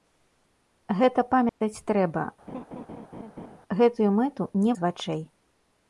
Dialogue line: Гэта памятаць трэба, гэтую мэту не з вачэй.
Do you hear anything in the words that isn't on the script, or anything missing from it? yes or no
no